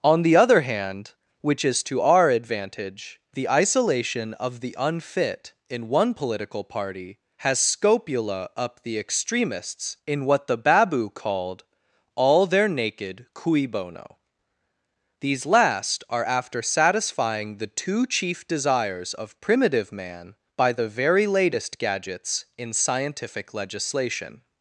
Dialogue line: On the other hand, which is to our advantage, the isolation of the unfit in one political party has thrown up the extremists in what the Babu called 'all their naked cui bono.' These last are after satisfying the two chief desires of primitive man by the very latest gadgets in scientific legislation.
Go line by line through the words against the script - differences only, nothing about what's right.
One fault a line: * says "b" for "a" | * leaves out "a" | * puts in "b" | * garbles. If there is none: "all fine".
* says "scopula" for "thrown"